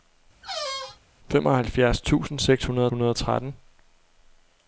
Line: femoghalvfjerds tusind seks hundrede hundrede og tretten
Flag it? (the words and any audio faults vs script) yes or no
yes